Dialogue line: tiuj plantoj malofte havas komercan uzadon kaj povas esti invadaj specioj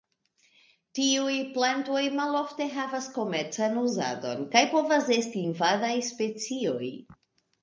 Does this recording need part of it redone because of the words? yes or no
no